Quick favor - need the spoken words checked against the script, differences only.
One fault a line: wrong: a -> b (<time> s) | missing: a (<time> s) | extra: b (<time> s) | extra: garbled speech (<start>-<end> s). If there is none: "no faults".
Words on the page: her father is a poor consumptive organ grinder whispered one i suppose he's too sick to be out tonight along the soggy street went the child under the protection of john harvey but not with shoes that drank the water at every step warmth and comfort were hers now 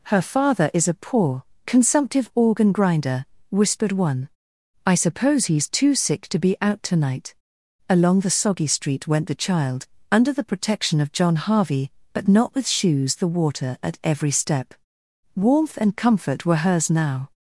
missing: that drank (13.2 s)